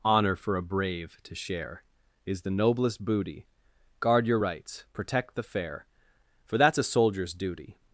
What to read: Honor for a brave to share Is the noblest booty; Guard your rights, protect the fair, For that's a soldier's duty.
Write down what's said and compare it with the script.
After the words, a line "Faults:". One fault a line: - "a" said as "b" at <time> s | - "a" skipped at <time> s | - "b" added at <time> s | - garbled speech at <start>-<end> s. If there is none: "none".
Honor for a brave to share Is the noblest booty; Guard your rights, protect the fair, For that's a soldier's duty.
Faults:
none